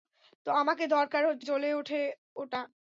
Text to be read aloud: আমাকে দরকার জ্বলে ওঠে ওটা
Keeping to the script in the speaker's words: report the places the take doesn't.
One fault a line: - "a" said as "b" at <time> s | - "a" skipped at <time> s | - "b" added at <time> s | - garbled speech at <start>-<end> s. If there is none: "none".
none